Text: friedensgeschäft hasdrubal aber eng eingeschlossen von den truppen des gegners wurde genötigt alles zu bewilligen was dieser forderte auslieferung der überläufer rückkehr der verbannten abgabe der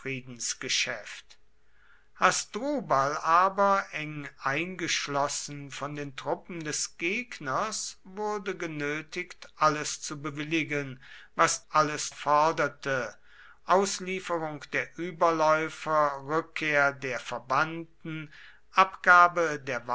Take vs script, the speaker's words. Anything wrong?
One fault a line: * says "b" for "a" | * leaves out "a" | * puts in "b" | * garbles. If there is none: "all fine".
* says "alles" for "dieser"